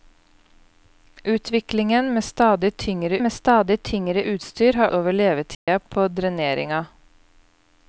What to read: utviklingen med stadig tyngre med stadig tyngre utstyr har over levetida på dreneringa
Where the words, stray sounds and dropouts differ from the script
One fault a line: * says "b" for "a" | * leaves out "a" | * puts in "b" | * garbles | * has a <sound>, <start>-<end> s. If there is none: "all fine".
* has a dropout, 5.5-5.7 s